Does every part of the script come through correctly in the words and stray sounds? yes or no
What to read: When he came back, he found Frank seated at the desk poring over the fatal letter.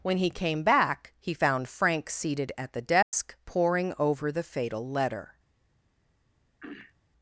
no